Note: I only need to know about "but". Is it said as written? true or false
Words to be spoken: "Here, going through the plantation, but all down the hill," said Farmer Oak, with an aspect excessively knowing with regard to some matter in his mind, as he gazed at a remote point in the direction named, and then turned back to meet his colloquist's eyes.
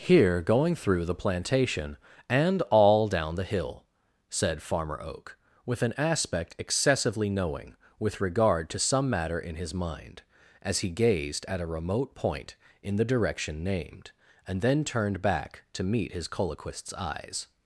false